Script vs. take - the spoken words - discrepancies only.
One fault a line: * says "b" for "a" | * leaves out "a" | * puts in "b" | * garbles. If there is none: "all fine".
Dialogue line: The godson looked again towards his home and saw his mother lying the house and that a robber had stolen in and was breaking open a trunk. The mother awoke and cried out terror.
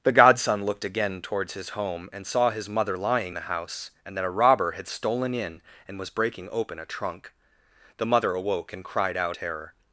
all fine